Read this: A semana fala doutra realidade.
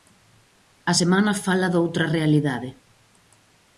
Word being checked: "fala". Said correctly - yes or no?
yes